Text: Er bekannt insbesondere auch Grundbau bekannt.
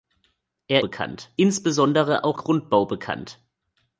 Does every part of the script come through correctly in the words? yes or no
yes